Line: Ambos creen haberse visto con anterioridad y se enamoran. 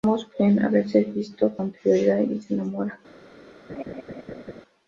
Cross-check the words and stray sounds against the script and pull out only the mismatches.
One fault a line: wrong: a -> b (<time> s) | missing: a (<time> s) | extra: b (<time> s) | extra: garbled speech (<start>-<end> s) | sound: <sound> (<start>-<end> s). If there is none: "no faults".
missing: con (1.5 s)
sound: laugh (3.7-4.6 s)